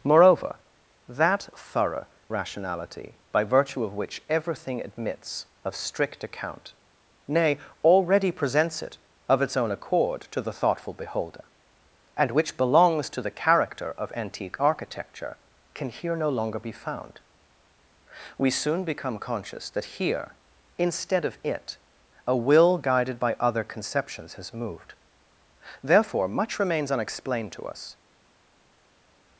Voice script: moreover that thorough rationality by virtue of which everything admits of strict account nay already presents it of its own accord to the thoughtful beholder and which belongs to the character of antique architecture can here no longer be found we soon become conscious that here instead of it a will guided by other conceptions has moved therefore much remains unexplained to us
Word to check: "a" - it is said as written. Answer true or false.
true